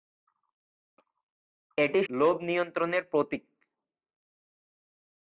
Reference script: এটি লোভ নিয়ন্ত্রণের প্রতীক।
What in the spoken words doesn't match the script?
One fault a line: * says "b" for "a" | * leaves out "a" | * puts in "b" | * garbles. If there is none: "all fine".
all fine